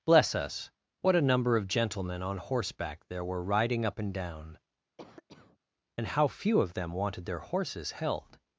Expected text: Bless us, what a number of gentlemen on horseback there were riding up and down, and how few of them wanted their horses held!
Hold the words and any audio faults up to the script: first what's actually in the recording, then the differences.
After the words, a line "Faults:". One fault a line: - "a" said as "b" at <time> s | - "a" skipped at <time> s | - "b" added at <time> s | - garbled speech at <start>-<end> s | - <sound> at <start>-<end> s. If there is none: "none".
Bless us, what a number of gentlemen on horseback there were riding up and down, and how few of them wanted their horses held!
Faults:
- cough at 5.0-5.6 s